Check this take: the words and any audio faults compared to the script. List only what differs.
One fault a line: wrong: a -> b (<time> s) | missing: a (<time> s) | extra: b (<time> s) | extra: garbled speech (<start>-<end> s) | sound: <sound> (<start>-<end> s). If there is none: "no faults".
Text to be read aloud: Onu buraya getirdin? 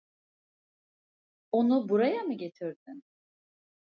extra: mı (2.2 s)